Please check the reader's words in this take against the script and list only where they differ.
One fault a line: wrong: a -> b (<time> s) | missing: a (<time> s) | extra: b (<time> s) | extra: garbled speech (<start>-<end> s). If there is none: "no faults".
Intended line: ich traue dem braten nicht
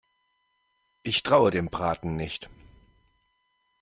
no faults